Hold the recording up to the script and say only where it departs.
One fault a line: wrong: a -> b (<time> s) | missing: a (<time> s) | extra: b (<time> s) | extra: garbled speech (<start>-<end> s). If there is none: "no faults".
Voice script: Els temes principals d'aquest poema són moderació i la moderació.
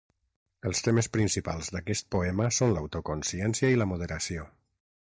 wrong: moderació -> l'autoconsciència (2.8 s)